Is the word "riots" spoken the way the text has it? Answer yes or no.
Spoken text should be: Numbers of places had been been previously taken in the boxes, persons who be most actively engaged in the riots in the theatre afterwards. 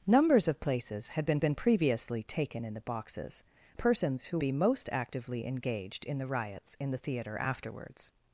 yes